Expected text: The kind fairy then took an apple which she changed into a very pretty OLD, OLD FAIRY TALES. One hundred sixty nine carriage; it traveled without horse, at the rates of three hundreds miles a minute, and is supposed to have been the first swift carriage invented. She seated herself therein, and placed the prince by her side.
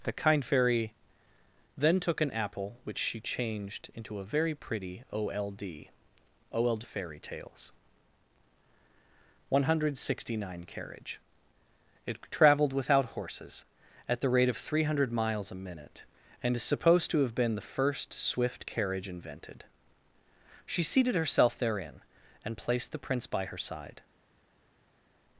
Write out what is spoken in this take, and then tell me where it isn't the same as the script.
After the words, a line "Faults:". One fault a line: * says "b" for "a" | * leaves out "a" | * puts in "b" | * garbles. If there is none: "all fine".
The kind fairy then took an apple which she changed into a very pretty OLD, OLD FAIRY TALES. One hundred sixty nine carriage; it traveled without horses, at the rate of three hundred miles a minute, and is supposed to have been the first swift carriage invented. She seated herself therein, and placed the prince by her side.
Faults:
* says "horses" for "horse"
* says "rate" for "rates"
* says "hundred" for "hundreds"